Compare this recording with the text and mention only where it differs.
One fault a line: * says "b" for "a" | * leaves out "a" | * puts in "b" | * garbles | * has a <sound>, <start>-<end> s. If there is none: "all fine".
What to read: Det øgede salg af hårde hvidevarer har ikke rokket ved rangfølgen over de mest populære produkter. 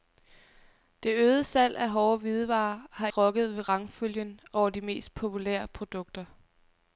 * leaves out "ikke"